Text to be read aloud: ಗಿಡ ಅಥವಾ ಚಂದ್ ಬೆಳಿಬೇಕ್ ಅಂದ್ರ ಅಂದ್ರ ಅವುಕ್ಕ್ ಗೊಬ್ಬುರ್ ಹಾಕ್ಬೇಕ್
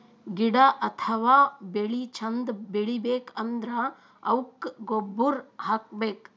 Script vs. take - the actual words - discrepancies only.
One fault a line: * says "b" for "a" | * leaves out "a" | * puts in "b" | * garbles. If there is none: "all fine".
* puts in "ಬೆಳಿ"
* leaves out "ಅಂದ್ರ"